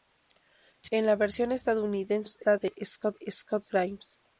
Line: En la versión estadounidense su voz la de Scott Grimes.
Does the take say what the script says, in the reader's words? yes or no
yes